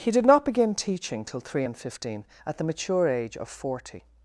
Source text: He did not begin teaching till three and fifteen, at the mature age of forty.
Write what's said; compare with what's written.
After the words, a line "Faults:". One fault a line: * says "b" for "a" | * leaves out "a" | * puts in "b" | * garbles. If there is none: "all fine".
He did not begin teaching till three and fifteen, at the mature age of forty.
Faults:
all fine